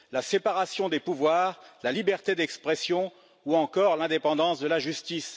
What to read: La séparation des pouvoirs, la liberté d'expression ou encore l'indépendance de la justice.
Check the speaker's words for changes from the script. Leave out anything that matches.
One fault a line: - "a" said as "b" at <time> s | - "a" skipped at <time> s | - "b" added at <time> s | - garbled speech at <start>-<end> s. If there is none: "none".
none